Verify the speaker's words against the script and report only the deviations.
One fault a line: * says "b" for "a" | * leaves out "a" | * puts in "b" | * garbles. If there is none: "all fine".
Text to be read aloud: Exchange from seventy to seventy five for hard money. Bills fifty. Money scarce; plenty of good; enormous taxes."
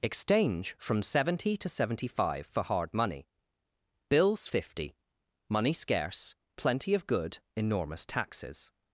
all fine